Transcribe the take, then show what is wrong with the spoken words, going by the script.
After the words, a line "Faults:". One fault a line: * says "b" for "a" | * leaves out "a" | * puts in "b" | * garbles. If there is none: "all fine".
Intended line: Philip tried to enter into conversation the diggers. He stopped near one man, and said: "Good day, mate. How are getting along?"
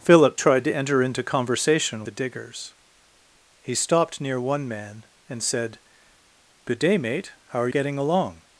Philip tried to enter into conversation the diggers. He stopped near one man, and said: "Good day, mate. How are getting along?"
Faults:
all fine